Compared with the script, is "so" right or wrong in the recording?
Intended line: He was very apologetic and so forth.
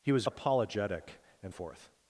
wrong